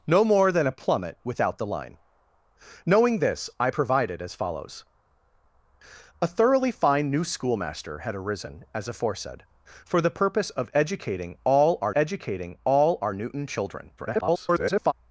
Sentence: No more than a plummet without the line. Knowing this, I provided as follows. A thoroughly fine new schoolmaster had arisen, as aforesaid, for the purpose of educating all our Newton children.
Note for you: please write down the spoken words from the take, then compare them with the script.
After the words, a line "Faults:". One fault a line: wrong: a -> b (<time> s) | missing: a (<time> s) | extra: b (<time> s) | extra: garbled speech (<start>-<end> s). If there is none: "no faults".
No more than a plummet without the line. Knowing this, I provided as follows. A thoroughly fine new schoolmaster had arisen, as aforesaid, for the purpose of educating all our educating all our Newton children. [garbled]
Faults:
extra: educating all our (11.9 s)
extra: garbled speech (14.0-14.9 s)